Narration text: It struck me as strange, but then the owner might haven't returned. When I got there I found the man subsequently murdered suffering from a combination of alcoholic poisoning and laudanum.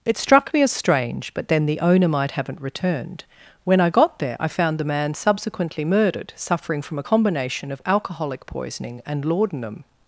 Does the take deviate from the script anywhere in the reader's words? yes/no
no